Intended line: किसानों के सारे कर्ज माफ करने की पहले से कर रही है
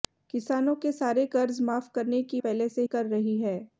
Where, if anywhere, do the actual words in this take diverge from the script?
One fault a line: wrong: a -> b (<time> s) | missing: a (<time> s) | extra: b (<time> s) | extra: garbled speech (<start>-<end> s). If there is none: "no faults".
no faults